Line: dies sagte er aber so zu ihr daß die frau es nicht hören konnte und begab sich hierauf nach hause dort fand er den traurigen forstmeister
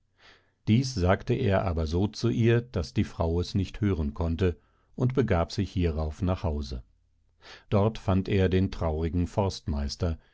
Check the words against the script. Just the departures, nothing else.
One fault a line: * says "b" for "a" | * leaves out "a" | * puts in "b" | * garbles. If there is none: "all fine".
all fine